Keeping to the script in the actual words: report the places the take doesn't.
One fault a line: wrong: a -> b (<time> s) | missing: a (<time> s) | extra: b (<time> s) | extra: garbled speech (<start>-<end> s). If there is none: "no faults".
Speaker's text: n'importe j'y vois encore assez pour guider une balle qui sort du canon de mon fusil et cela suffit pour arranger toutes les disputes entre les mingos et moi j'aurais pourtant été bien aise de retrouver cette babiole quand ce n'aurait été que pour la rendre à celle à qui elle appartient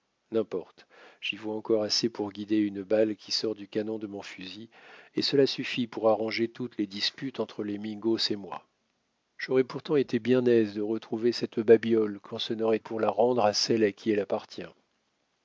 missing: été que (12.8 s)